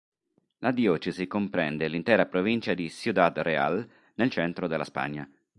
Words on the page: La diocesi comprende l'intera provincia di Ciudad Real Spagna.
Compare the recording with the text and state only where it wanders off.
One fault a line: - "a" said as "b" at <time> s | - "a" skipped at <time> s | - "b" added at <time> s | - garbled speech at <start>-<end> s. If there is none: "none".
- "nel centro della" added at 4.2 s